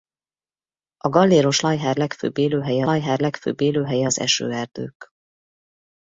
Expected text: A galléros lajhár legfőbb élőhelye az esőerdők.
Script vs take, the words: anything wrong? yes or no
yes